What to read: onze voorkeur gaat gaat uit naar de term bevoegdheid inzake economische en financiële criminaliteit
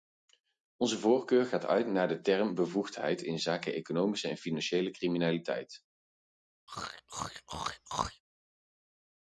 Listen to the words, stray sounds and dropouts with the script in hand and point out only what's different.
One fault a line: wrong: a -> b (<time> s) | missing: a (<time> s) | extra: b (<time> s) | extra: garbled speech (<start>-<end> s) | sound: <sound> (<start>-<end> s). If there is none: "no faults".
missing: gaat (1.6 s)
sound: throat clearing (6.7-8.2 s)